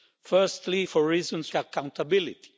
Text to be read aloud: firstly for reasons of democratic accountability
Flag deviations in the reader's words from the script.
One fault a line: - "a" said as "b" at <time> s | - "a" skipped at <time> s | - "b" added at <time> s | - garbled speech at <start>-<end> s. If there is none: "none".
- "of democratic" skipped at 1.5 s